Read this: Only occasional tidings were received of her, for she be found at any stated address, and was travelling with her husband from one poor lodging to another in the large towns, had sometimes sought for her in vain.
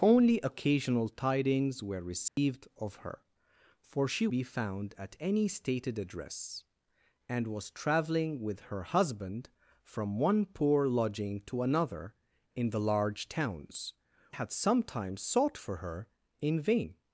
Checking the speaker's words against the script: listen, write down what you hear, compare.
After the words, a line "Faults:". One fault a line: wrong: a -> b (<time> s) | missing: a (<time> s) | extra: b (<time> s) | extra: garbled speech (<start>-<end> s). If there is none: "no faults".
Only occasional tidings were received of her, for she be found at any stated address, and was travelling with her husband from one poor lodging to another in the large towns, had sometimes sought for her in vain.
Faults:
no faults